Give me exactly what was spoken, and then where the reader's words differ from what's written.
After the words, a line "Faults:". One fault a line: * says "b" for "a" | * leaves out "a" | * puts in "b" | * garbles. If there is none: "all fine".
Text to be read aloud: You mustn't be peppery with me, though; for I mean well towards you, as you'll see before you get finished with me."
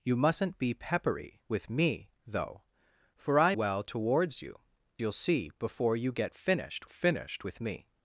You mustn't be peppery with me, though; for I well towards you, you'll see before you get finished finished with me."
Faults:
* leaves out "mean"
* leaves out "as"
* puts in "finished"